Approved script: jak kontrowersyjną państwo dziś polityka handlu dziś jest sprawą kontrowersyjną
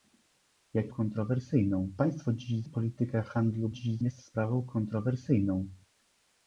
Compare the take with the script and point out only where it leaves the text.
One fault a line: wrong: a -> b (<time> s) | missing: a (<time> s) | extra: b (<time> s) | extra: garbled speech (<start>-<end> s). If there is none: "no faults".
no faults